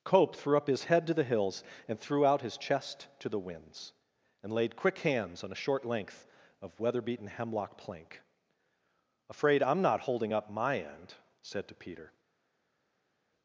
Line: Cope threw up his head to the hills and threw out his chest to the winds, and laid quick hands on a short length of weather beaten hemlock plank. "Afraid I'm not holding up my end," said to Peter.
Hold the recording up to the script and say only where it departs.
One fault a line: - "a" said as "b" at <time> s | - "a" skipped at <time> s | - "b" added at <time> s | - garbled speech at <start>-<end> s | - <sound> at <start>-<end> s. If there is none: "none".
none